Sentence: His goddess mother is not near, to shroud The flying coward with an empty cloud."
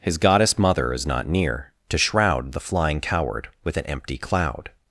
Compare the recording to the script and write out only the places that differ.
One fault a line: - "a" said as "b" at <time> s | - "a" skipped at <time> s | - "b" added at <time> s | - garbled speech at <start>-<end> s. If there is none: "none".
none